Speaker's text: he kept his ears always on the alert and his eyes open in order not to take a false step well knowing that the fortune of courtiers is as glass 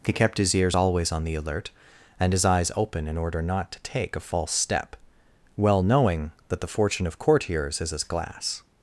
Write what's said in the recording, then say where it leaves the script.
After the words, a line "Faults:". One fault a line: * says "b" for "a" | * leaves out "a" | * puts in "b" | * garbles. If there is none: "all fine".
he kept his ears always on the alert and his eyes open in order not to take a false step well knowing that the fortune of courtiers is as glass
Faults:
all fine